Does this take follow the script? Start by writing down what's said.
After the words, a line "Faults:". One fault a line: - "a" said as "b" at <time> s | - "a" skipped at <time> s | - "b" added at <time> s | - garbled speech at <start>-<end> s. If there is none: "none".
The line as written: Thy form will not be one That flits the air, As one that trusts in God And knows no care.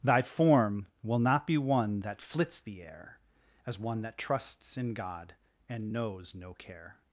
Thy form will not be one That flits the air, As one that trusts in God And knows no care.
Faults:
none